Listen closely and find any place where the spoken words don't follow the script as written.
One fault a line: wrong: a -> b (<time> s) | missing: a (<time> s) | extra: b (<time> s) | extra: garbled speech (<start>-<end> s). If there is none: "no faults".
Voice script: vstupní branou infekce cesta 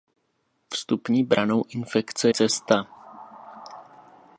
no faults